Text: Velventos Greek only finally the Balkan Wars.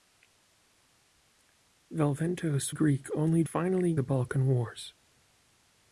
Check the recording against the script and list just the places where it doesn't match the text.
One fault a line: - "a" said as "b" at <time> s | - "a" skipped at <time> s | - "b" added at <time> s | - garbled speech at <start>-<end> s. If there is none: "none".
none